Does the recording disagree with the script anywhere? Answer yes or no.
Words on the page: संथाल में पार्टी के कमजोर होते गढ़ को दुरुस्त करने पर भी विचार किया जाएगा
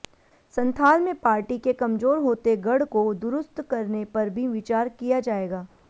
no